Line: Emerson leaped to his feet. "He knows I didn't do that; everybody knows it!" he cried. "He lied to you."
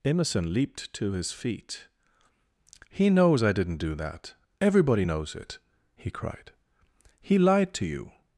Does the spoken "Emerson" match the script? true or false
true